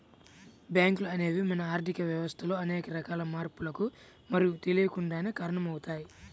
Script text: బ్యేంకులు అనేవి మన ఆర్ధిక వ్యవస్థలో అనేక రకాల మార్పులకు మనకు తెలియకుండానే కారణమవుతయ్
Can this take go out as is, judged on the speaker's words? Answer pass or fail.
pass